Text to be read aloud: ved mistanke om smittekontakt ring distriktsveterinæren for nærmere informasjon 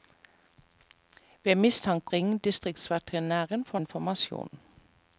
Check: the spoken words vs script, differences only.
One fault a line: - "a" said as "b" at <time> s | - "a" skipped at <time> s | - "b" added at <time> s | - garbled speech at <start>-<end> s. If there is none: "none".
- "om smittekontakt" skipped at 2.1 s
- "nærmere" skipped at 3.8 s